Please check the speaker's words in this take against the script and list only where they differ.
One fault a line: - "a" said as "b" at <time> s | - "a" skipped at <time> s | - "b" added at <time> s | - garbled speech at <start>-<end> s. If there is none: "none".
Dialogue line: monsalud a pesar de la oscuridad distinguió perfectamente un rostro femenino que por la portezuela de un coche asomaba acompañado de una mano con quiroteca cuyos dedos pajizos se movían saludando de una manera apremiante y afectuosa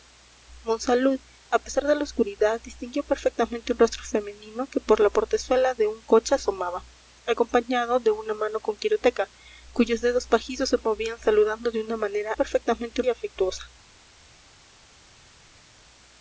- "apremiante" said as "perfectamente" at 12.3 s